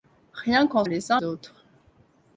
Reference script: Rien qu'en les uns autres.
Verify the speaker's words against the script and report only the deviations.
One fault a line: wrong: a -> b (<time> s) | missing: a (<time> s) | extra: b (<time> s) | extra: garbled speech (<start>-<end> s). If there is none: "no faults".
no faults